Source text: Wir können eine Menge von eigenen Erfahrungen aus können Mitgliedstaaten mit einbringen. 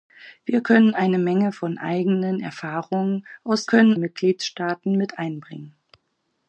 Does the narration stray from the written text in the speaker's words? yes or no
no